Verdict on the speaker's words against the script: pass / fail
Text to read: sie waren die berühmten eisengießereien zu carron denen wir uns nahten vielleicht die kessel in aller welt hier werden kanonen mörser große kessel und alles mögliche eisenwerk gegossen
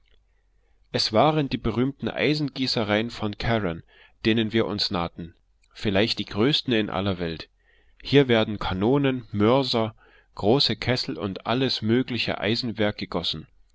fail